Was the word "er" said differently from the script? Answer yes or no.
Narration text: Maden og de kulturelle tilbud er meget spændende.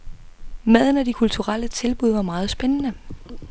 yes